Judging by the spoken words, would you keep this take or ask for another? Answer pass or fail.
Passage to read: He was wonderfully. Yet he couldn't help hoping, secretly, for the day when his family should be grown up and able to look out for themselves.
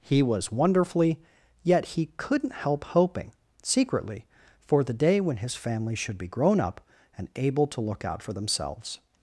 pass